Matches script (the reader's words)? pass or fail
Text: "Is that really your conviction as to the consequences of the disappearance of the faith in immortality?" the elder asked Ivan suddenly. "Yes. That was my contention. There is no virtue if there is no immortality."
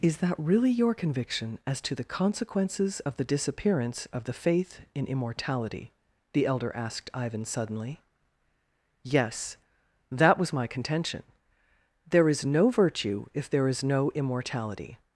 pass